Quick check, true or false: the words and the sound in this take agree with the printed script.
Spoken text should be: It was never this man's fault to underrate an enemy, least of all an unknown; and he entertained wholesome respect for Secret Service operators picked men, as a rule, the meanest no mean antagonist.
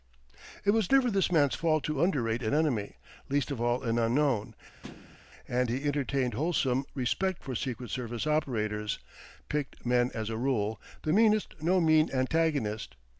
false